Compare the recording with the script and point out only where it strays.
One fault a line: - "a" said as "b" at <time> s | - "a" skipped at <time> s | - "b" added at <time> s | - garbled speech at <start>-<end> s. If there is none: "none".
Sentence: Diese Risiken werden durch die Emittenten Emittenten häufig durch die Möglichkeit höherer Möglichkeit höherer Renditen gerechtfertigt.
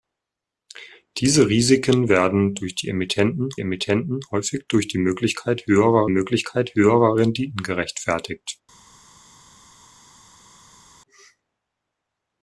none